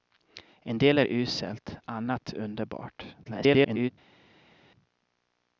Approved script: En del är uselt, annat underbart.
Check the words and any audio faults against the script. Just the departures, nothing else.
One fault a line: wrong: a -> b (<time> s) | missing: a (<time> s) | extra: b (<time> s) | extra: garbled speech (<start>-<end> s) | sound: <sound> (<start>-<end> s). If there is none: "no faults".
extra: garbled speech (3.2-3.9 s)